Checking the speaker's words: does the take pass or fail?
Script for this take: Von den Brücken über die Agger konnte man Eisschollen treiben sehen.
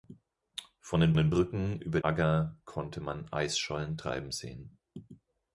fail